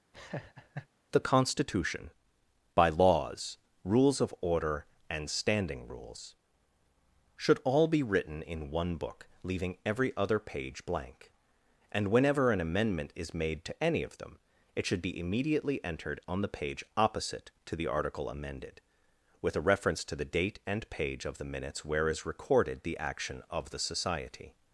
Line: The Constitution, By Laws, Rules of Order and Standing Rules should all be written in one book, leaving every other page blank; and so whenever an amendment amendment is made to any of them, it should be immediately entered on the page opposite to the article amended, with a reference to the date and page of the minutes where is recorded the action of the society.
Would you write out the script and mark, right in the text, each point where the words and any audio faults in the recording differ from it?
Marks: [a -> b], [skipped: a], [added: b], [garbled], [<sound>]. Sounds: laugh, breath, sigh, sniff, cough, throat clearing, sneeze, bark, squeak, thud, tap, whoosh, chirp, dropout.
[laugh] The Constitution, By Laws, Rules of Order and Standing Rules should all be written in one book, leaving every other page blank; and [skipped: so] whenever an amendment [skipped: amendment] is made to any of them, it should be immediately entered on the page opposite to the article amended, with a reference to the date and page of the minutes where is recorded the action of the society.